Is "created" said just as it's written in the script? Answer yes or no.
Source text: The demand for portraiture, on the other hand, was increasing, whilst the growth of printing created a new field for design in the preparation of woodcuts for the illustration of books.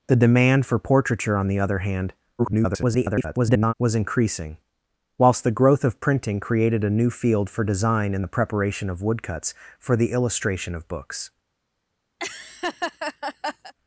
yes